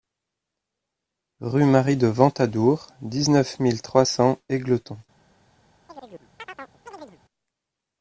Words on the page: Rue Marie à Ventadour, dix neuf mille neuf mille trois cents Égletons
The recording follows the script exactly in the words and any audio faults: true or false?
false